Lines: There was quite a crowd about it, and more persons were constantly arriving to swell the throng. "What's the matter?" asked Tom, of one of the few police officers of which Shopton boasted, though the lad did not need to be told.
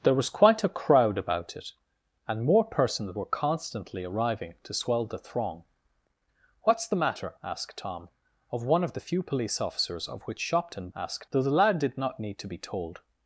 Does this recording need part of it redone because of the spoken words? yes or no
yes